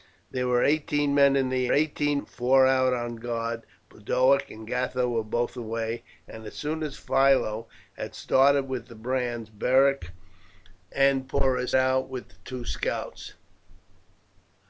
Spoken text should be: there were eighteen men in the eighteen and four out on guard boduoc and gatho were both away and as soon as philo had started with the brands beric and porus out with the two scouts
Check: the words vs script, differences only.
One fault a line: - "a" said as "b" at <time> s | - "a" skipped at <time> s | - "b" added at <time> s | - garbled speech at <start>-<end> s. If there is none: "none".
none